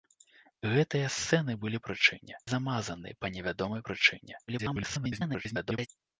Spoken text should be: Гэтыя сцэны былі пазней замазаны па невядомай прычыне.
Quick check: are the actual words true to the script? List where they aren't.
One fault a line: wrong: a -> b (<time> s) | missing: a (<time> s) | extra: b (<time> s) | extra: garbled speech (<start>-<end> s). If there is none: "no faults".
wrong: пазней -> прычыне (1.9 s)
extra: garbled speech (4.5-5.9 s)